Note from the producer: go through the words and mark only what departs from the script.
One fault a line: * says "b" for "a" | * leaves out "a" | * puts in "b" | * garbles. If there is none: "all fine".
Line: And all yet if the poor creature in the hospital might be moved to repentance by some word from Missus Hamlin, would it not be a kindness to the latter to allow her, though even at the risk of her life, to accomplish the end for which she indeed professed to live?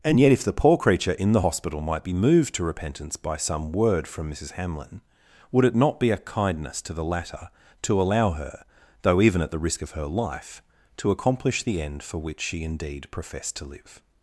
* leaves out "all"